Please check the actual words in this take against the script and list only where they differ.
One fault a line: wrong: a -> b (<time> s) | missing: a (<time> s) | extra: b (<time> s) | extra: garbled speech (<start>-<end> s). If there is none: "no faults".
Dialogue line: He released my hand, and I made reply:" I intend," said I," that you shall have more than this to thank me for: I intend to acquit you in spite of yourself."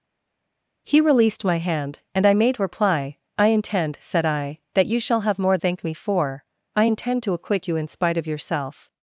missing: than this to (5.6 s)